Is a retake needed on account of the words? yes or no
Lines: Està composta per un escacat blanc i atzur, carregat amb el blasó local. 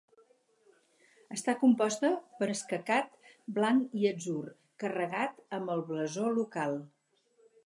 yes